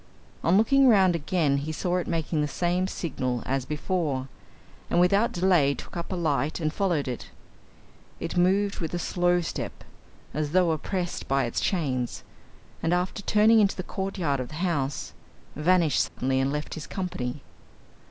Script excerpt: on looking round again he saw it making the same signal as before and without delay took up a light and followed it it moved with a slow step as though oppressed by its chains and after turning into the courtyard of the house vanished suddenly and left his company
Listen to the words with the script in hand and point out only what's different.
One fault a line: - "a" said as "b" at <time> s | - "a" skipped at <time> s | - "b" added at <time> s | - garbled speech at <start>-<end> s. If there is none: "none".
none